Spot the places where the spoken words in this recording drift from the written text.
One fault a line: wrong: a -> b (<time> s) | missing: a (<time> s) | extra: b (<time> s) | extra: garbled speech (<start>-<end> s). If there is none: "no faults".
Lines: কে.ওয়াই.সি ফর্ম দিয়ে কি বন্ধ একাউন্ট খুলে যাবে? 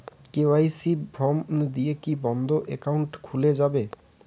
no faults